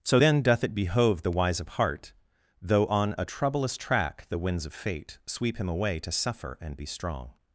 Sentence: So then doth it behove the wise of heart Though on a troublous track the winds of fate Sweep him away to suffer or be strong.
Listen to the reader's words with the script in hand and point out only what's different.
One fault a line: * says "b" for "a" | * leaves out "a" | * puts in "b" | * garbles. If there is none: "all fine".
* says "and" for "or"